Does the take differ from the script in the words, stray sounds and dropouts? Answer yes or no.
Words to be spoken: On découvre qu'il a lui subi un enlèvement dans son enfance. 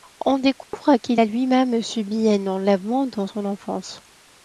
yes